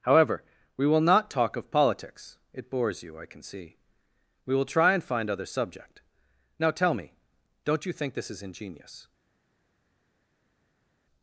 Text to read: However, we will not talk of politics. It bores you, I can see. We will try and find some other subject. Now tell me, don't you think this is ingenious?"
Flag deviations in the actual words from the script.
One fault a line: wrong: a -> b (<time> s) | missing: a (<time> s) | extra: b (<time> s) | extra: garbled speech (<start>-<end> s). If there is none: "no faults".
missing: some (5.3 s)